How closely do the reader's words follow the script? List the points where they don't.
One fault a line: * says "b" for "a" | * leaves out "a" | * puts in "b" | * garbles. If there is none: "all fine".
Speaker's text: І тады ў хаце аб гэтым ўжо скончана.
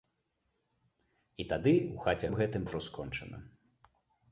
all fine